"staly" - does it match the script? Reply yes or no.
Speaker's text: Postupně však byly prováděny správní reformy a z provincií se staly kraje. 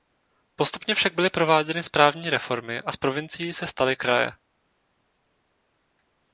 yes